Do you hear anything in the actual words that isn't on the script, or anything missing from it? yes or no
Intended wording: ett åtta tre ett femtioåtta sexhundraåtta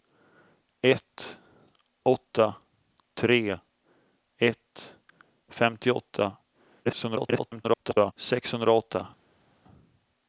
yes